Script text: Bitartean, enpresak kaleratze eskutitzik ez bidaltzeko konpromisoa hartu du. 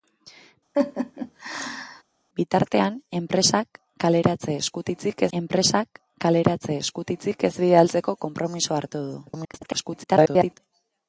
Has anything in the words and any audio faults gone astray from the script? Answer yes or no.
yes